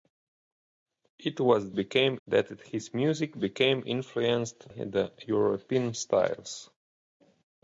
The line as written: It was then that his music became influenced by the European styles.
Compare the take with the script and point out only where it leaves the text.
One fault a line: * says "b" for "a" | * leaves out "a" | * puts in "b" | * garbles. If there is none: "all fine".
* says "became" for "then"
* leaves out "by"